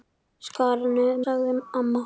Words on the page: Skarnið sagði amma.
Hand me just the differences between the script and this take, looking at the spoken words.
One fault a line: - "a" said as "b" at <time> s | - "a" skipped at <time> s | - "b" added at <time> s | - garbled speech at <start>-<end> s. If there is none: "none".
none